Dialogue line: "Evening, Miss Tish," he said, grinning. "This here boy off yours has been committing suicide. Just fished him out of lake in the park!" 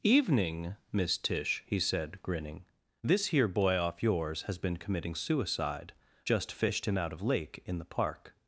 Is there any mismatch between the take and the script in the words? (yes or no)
no